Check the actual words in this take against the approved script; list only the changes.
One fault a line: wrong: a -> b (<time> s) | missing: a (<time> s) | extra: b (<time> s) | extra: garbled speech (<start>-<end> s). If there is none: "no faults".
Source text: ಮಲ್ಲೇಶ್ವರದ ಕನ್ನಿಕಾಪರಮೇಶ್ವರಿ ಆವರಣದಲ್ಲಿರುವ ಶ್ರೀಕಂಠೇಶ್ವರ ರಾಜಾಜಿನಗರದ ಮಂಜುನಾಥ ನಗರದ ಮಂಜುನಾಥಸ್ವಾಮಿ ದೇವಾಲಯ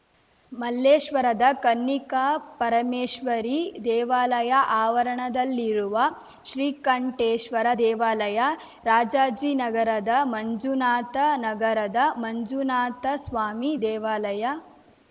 extra: ದೇವಾಲಯ (3.8 s)
extra: ದೇವಾಲಯ (7.8 s)